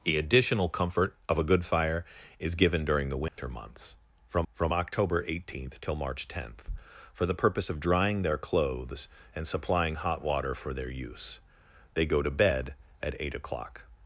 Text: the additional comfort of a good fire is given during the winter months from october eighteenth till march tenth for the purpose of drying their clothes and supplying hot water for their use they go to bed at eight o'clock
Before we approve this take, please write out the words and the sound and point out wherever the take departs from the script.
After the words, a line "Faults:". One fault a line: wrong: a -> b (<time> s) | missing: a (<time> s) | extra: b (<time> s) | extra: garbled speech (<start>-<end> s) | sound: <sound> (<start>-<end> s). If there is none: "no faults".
the additional comfort of a good fire is given during the winter months from from october eighteenth till march tenth for the purpose of drying their clothes and supplying hot water for their use they go to bed at eight o'clock
Faults:
sound: dropout (3.3-3.4 s)
extra: from (4.5 s)